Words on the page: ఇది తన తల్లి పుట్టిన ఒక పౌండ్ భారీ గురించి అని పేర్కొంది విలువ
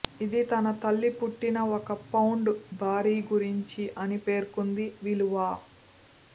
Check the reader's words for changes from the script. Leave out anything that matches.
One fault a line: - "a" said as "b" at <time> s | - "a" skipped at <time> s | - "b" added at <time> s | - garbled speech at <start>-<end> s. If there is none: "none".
none